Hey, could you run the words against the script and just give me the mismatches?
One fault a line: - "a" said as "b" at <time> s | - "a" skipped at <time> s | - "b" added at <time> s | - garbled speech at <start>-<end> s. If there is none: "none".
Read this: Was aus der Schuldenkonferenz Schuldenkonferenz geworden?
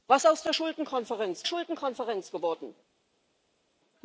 none